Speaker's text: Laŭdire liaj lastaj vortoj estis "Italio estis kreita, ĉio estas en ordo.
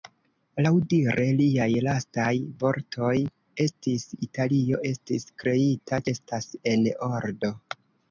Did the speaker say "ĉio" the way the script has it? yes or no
no